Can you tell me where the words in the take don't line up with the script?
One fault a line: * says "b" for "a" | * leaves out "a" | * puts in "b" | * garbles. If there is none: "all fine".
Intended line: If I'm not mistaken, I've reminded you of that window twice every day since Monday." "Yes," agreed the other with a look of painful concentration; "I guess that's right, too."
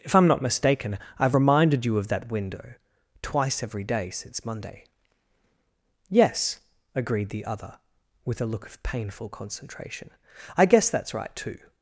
all fine